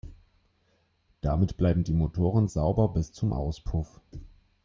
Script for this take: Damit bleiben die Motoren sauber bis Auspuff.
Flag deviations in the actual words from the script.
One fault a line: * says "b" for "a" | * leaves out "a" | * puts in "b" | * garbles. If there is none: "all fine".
* puts in "zum"